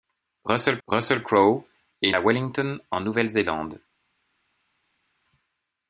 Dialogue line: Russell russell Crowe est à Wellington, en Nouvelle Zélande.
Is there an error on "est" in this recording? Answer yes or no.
no